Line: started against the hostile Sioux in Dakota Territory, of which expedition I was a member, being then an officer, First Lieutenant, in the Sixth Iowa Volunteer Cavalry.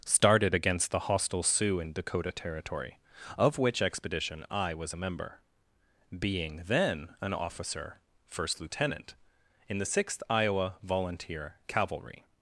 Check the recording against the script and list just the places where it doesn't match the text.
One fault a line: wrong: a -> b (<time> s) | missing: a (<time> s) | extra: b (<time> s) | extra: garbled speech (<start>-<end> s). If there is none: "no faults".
no faults